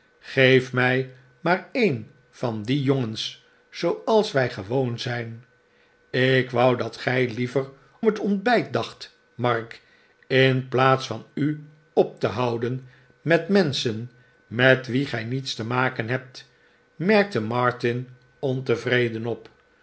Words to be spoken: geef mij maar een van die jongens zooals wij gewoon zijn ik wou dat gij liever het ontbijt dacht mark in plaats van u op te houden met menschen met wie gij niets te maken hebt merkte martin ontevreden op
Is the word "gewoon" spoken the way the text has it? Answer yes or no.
yes